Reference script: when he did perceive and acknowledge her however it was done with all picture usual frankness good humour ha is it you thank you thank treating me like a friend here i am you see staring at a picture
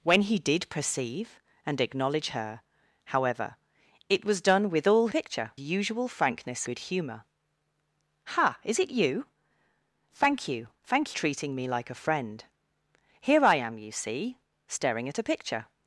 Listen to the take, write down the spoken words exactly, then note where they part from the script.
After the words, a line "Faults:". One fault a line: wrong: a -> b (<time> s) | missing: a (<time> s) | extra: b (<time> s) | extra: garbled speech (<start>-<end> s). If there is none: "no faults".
when he did perceive and acknowledge her however it was done with all picture usual frankness good humour ha is it you thank you thank treating me like a friend here i am you see staring at a picture
Faults:
no faults